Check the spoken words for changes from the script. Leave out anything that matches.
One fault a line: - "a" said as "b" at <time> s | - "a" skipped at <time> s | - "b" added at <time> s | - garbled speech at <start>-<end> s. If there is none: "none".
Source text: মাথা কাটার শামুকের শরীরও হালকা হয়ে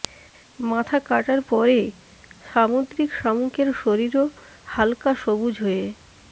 - "পরে সামুদ্রিক" added at 1.5 s
- "সবুজ" added at 5.2 s